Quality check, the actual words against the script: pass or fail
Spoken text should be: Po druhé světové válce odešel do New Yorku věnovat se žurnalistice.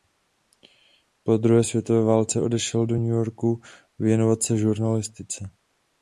pass